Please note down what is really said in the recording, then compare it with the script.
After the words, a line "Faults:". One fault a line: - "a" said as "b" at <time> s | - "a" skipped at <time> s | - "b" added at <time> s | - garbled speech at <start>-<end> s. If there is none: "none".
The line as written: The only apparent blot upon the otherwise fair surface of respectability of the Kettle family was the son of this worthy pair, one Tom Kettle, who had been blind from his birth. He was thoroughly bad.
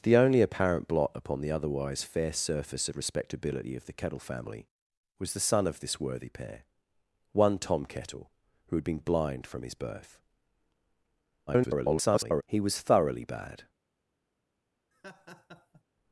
The only apparent blot upon the otherwise fair surface of respectability of the Kettle family was the son of this worthy pair, one Tom Kettle, who had been blind from his birth. [garbled] He was thoroughly bad.
Faults:
- garbled speech at 11.5-12.4 s